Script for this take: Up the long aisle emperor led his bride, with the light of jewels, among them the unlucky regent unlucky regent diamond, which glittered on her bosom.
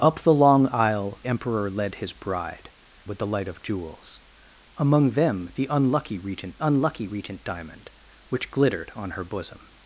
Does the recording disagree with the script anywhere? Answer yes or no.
no